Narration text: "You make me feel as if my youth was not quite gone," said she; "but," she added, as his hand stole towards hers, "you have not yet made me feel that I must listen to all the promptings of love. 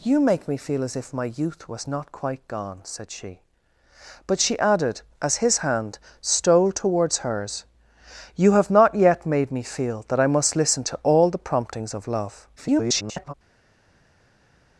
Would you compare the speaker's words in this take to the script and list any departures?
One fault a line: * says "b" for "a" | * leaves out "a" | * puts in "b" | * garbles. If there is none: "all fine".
* garbles